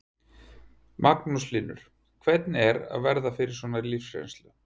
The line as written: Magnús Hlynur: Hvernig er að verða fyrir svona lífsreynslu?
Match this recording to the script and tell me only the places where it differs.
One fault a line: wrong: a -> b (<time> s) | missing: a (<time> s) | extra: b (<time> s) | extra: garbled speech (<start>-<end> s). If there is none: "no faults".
no faults